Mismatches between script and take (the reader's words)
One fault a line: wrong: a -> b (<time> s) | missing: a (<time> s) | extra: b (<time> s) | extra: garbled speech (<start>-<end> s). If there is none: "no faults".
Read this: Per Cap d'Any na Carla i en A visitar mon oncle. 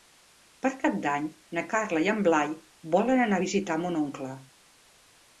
extra: Blai volen anar (2.3 s)